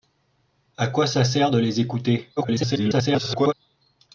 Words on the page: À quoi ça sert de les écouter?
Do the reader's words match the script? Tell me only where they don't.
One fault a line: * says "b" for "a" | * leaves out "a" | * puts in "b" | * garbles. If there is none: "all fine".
* garbles